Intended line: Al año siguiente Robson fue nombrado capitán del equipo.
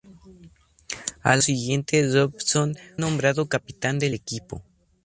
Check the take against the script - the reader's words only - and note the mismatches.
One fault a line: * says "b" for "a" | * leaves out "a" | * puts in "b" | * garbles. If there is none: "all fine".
* leaves out "año"
* leaves out "fue"